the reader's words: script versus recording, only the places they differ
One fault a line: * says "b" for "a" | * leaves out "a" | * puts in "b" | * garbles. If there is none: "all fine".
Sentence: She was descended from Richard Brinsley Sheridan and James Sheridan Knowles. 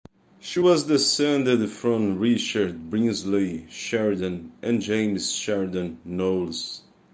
all fine